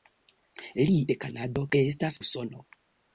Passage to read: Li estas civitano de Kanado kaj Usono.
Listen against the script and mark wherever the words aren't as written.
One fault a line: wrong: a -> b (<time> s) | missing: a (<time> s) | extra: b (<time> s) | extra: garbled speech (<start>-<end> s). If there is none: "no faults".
missing: estas civitano (0.9 s)
wrong: kaj -> estas (1.8 s)